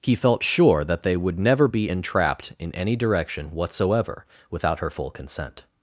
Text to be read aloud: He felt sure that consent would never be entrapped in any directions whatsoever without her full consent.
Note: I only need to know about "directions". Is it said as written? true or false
false